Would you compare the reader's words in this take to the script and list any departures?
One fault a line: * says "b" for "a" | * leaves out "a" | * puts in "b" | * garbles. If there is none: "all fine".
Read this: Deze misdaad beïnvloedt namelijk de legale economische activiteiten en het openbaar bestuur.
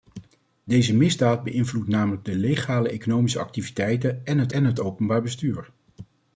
* puts in "en het"